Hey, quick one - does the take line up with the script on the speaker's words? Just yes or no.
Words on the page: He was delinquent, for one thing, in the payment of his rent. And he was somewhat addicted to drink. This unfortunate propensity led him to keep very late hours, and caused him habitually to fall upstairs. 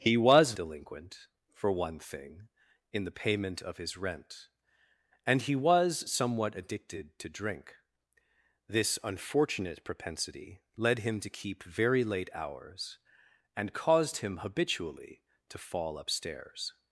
yes